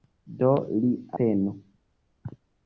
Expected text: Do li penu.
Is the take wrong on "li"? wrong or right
right